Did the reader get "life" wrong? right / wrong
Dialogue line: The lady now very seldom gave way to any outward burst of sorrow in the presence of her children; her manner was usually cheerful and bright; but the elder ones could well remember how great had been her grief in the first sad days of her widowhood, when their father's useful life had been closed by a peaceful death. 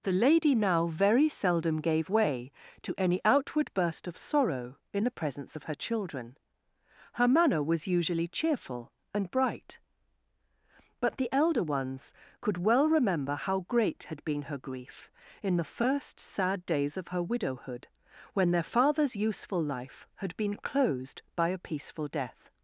right